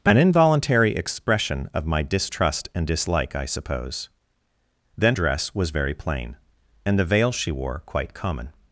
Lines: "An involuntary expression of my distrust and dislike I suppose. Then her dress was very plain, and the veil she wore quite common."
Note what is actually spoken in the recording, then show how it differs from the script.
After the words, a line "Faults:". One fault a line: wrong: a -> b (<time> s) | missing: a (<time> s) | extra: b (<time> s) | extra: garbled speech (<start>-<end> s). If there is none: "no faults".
"An involuntary expression of my distrust and dislike I suppose. Then dress was very plain, and the veil she wore quite common."
Faults:
missing: her (5.2 s)